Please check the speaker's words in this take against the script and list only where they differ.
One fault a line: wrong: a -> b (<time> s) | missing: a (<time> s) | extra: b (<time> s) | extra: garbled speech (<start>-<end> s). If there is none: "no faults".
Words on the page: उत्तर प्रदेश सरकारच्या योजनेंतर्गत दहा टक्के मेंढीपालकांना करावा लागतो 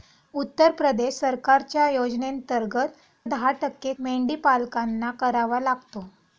no faults